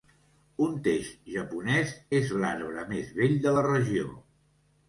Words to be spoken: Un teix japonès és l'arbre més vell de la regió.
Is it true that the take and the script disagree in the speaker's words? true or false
false